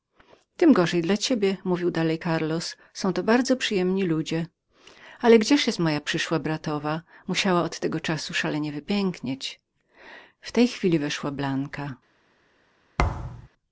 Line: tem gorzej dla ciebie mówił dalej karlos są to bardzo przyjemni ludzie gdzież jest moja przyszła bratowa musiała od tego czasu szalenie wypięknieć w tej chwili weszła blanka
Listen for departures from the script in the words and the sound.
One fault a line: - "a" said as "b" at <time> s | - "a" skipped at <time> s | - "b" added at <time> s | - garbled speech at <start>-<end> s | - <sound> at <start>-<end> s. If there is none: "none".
- "ale" added at 5.2 s
- thud at 13.0-13.5 s